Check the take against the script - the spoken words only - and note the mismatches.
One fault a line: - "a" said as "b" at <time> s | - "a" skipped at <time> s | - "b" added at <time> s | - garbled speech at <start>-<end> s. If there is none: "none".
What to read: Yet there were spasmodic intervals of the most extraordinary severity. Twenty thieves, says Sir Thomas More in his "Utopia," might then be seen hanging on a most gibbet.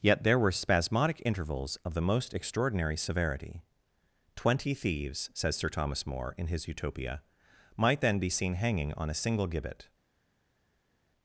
- "most" said as "single" at 9.1 s